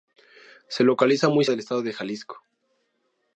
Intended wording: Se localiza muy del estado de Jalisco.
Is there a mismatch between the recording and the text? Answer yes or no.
no